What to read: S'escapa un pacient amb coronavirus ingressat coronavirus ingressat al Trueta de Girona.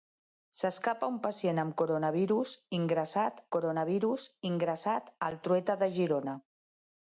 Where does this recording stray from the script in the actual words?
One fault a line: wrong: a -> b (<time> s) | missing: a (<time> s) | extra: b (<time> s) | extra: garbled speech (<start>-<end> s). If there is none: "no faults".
no faults